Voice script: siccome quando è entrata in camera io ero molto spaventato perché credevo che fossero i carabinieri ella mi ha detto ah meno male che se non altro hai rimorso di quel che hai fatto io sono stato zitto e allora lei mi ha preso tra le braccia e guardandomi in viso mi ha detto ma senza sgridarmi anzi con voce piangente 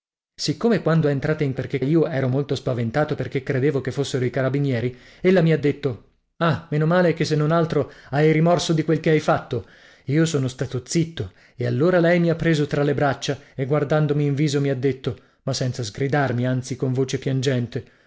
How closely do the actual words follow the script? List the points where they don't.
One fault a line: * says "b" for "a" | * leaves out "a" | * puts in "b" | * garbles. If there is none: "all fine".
* says "perché" for "camera"